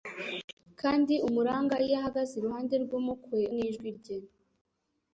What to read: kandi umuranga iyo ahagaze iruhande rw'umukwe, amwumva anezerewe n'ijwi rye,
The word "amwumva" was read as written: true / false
false